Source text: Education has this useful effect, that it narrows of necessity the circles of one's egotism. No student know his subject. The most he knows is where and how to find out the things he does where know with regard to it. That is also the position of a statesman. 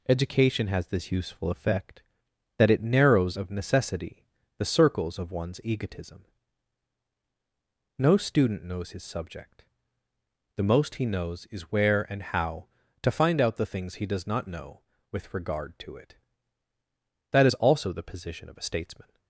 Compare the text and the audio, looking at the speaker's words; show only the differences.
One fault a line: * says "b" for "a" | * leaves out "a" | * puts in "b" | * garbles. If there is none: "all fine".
* says "knows" for "know"
* says "not" for "where"